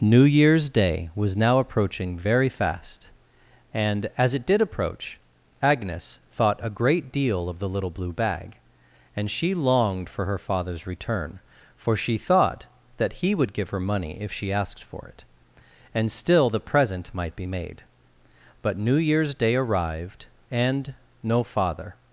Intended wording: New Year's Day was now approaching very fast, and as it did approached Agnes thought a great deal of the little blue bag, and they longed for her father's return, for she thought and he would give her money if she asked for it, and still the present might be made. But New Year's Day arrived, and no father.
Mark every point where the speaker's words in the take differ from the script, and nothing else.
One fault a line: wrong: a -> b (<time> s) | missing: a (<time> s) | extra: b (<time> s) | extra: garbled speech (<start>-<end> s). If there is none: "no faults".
wrong: approached -> approach (4.6 s)
wrong: they -> she (9.3 s)
wrong: and -> that (13.0 s)